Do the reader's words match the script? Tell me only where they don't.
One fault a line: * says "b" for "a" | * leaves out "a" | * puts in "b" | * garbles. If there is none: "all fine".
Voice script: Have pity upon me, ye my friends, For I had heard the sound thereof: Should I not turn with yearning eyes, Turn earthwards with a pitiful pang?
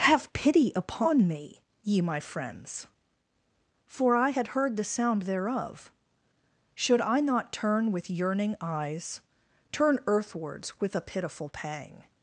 all fine